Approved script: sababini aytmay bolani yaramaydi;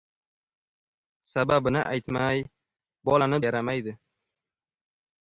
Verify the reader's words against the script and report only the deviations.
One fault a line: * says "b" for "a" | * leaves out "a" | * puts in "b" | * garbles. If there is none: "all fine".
all fine